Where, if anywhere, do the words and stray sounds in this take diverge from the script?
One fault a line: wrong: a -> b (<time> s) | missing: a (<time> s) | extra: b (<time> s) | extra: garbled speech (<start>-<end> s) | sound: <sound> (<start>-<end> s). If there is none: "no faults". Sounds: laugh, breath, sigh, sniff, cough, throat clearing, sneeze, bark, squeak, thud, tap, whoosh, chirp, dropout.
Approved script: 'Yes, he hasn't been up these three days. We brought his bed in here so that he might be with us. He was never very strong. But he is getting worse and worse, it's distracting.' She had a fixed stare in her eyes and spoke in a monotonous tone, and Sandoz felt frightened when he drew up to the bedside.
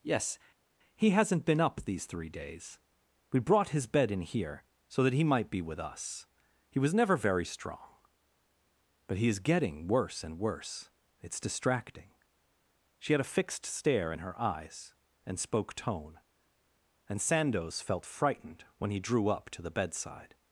missing: in a monotonous (15.7 s)